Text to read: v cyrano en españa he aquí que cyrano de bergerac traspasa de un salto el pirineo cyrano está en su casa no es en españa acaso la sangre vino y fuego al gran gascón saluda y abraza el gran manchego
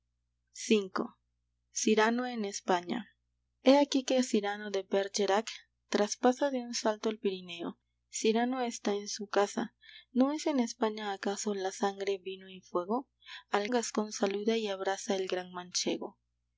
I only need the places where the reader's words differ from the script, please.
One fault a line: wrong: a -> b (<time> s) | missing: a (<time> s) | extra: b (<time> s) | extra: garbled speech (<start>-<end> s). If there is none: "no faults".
missing: gran (13.7 s)